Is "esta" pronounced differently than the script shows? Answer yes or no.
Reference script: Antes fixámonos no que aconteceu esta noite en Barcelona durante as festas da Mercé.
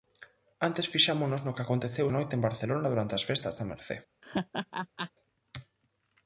yes